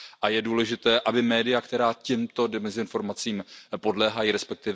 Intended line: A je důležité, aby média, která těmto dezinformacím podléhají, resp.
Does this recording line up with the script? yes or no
yes